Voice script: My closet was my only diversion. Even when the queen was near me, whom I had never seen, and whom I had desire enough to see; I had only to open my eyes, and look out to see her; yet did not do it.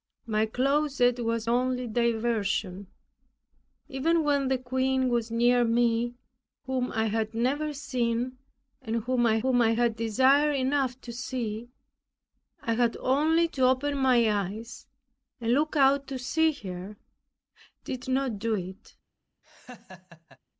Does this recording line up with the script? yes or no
no